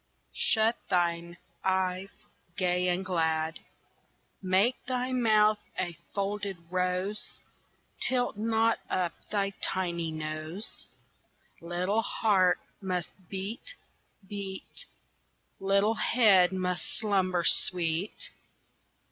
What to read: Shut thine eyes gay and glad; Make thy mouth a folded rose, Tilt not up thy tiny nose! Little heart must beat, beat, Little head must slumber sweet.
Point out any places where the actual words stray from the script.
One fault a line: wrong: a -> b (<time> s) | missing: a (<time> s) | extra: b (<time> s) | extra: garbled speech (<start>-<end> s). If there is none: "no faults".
no faults